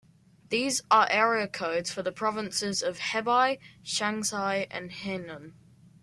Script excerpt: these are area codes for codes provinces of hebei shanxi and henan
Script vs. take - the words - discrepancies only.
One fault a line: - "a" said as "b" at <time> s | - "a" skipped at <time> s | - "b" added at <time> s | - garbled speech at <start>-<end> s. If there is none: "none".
- "codes" said as "the" at 2.0 s